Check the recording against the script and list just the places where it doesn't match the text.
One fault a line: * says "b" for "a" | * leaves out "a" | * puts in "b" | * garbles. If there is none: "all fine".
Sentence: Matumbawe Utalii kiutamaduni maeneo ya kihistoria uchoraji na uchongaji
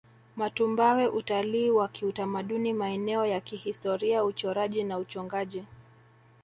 * puts in "wa"